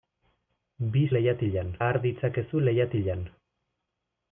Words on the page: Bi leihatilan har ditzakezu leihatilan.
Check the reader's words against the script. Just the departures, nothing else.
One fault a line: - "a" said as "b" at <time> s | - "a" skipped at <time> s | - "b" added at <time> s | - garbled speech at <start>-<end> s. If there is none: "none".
none